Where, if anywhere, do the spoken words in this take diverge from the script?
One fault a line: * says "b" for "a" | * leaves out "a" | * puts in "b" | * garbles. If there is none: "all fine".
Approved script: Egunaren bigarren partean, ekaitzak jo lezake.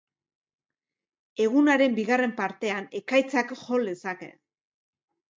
all fine